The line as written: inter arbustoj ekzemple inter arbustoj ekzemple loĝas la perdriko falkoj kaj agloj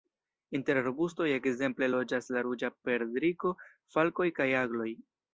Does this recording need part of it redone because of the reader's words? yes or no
yes